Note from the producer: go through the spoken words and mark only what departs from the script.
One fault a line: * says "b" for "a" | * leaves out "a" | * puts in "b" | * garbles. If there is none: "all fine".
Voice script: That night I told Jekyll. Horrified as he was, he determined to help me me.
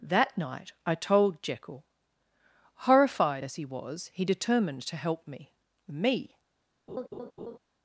all fine